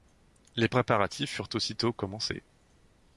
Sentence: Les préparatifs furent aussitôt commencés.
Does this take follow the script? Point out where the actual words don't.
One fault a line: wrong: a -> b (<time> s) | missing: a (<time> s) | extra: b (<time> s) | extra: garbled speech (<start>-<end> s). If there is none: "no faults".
no faults